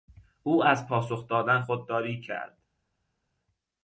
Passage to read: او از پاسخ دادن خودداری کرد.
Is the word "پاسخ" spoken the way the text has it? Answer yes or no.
yes